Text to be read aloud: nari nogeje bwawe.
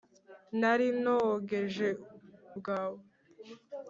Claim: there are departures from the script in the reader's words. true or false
false